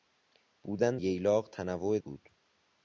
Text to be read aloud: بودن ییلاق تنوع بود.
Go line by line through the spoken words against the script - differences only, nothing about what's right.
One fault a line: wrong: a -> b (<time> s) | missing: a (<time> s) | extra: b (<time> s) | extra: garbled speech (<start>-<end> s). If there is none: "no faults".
no faults